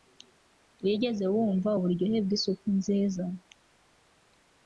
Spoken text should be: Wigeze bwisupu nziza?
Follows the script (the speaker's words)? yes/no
no